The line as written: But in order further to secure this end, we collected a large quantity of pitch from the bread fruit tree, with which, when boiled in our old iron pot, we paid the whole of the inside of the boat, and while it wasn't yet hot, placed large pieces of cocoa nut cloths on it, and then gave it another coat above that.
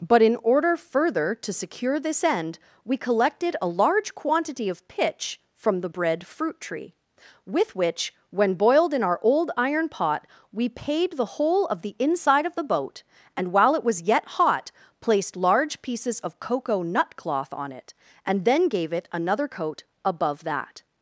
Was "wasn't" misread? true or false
true